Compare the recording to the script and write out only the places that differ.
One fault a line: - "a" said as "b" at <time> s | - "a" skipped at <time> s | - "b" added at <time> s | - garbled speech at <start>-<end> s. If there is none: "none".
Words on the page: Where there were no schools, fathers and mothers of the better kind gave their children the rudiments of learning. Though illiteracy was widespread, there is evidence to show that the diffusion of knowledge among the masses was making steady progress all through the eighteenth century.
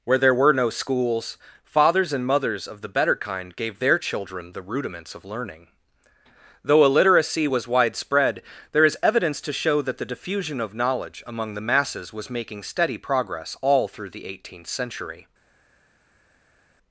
none